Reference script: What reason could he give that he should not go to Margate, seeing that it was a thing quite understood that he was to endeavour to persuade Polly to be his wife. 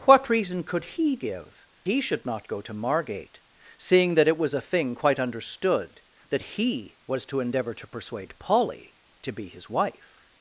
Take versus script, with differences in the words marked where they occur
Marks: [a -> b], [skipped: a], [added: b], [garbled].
What reason could he give [skipped: that] he should not go to Margate, seeing that it was a thing quite understood that he was to endeavour to persuade Polly to be his wife.